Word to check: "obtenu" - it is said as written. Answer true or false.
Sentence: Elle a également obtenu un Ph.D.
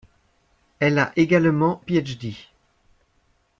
false